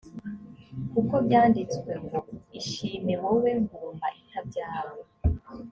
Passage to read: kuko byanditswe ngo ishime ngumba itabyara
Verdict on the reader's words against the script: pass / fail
fail